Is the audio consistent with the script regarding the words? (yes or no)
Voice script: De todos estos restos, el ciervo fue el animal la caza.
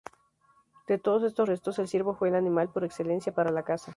no